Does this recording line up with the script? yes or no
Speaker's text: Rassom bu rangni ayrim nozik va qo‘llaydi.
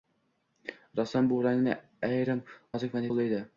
yes